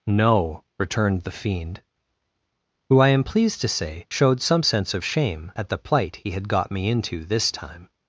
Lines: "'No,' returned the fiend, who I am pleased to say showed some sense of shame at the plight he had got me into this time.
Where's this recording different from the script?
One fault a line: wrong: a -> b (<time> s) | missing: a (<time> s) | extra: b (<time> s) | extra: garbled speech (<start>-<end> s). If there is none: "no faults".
no faults